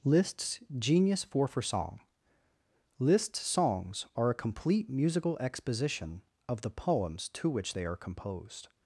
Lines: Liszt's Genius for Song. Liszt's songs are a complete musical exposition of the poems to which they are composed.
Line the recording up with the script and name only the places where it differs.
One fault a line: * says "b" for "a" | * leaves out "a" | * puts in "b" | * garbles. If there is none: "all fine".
* puts in "for"